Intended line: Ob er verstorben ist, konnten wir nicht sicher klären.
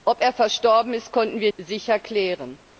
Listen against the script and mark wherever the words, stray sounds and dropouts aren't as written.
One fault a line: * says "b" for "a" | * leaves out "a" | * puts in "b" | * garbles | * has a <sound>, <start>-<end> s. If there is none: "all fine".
* leaves out "nicht"